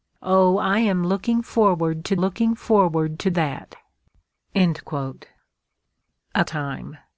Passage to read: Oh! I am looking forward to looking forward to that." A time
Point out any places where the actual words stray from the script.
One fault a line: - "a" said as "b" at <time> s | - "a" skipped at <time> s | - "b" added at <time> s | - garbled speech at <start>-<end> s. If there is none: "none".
none